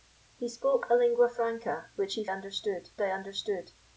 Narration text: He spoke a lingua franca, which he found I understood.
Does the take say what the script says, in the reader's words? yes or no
no